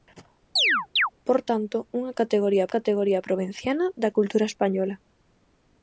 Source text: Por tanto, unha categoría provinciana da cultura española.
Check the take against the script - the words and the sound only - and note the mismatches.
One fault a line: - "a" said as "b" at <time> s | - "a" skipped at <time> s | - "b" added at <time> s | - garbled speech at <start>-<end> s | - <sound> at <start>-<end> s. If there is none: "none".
- chirp at 0.6-1.1 s
- "categoría" added at 2.8 s